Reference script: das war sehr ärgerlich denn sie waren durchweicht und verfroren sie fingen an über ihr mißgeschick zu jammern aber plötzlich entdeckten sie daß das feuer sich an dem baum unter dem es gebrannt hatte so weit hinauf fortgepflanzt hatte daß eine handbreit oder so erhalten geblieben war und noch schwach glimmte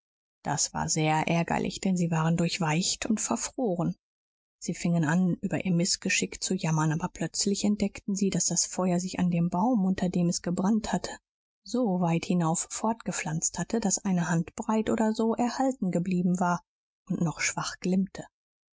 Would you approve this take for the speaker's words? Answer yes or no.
yes